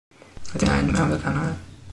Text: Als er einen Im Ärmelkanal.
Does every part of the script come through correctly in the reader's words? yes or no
yes